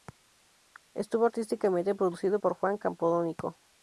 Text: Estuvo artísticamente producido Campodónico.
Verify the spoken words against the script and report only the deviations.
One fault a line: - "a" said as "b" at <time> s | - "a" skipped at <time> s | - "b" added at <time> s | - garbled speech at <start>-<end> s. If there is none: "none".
- "por Juan" added at 2.3 s